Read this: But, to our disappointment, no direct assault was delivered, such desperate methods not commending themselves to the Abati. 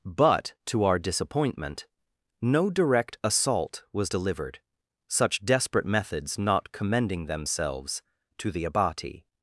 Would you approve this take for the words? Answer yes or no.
yes